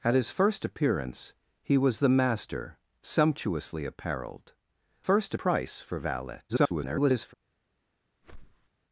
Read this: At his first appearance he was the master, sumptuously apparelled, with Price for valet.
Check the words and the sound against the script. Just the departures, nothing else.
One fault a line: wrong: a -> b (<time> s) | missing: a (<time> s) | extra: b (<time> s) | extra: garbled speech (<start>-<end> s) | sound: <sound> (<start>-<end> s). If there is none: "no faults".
wrong: with -> first (5.0 s)
extra: garbled speech (6.5-7.3 s)
sound: whoosh (8.2-8.7 s)